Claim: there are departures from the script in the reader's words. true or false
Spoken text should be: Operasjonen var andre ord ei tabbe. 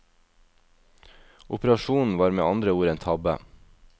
true